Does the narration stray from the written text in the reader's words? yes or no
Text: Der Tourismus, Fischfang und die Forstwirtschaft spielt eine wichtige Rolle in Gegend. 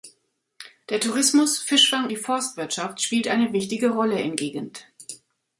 yes